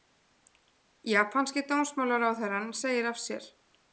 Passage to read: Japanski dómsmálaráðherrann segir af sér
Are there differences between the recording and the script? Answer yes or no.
no